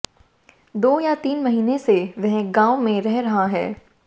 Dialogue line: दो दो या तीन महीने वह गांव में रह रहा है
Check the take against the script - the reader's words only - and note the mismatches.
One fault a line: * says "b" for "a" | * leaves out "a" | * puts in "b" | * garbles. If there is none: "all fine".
* leaves out "दो"
* puts in "से"